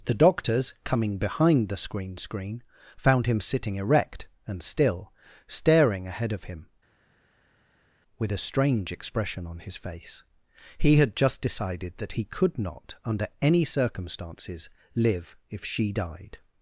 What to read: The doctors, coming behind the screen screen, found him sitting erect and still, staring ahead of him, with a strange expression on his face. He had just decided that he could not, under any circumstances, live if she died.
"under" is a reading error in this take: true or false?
false